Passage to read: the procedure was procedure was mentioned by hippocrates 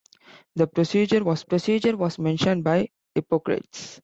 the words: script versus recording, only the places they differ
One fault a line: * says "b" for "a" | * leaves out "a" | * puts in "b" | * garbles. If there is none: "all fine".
all fine